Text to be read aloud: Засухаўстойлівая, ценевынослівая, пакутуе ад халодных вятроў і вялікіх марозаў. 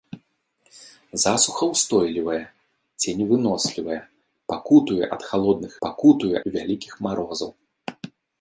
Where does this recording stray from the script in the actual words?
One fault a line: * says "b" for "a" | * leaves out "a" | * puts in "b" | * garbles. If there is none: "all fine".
* says "пакутуе" for "вятроў"